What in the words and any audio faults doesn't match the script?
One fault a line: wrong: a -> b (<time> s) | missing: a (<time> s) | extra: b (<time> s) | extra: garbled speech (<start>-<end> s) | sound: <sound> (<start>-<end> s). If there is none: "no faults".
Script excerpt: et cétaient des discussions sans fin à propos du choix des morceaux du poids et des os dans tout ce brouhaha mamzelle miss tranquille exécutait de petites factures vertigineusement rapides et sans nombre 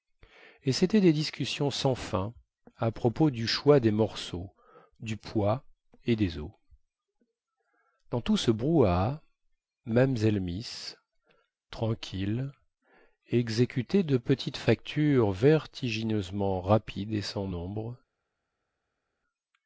no faults